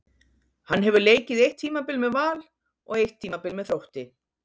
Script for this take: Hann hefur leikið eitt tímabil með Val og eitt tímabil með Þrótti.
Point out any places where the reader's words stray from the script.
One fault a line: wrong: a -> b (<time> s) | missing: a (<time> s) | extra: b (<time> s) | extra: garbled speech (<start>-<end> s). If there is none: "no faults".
no faults